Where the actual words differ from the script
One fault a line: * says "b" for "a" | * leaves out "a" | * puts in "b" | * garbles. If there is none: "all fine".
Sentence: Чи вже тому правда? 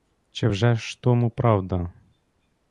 * puts in "ж"